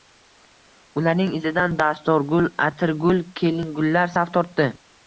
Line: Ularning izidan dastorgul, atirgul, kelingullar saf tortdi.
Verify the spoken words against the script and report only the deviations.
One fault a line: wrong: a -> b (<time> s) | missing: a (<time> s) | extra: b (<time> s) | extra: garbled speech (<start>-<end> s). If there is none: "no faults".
no faults